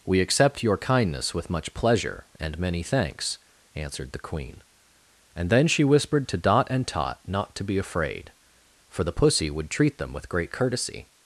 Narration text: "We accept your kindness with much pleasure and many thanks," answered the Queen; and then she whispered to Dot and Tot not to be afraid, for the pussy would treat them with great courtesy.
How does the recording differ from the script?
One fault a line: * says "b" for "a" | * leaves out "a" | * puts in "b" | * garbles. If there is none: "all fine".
all fine